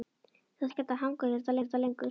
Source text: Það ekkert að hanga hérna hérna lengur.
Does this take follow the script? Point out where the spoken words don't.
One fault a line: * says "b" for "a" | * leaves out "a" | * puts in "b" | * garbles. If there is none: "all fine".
all fine